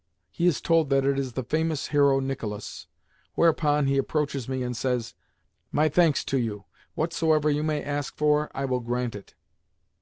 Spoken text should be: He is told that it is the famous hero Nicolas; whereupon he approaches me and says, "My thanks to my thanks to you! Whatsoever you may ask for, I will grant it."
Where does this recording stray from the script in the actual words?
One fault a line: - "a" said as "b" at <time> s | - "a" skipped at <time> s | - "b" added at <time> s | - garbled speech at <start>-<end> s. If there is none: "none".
- "my thanks to" skipped at 6.4 s